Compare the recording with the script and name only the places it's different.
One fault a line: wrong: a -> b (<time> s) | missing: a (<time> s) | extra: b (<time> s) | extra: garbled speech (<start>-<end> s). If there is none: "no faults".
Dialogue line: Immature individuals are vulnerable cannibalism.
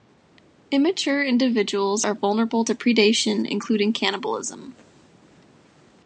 extra: to predation including (2.6 s)